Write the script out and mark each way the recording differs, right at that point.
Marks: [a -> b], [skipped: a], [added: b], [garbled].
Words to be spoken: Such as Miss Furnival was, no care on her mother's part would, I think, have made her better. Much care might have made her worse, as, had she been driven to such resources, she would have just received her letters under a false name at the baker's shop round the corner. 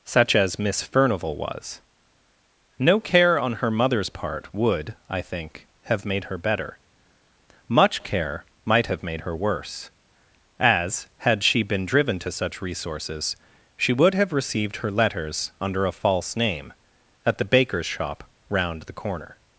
Such as Miss Furnival was, no care on her mother's part would, I think, have made her better. Much care might have made her worse, as, had she been driven to such resources, she would have [skipped: just] received her letters under a false name at the baker's shop round the corner.